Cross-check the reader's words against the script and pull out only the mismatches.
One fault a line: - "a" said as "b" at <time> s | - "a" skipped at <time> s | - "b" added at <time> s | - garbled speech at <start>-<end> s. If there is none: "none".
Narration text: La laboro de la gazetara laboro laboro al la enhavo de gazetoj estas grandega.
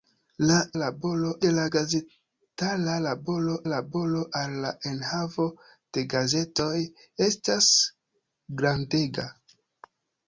none